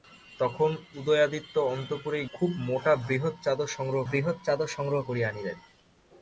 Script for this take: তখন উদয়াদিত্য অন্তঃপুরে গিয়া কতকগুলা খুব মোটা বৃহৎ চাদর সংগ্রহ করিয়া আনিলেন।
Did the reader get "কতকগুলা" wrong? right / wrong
wrong